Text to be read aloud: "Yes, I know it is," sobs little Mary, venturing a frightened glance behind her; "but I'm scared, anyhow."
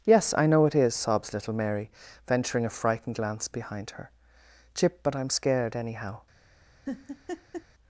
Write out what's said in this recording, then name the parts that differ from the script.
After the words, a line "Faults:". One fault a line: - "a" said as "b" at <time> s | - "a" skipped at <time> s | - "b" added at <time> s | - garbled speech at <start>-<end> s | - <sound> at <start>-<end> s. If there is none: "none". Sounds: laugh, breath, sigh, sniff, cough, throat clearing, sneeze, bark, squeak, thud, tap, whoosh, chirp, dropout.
"Yes, I know it is," sobs little Mary, venturing a frightened glance behind her; chip "but I'm scared, anyhow."
Faults:
- "chip" added at 4.7 s
- laugh at 6.9-7.7 s